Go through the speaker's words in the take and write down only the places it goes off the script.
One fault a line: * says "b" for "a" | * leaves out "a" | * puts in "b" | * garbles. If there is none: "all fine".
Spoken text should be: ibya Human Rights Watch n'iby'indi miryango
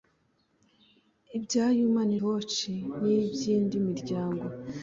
* leaves out "Rights"